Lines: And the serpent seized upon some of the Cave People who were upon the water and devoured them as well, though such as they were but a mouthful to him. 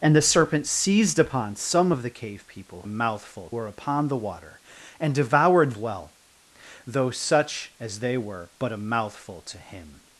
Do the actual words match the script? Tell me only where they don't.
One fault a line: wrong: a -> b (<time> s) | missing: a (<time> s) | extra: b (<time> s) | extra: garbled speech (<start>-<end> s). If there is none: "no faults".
wrong: who -> mouthful (2.9 s)
missing: them as (5.7 s)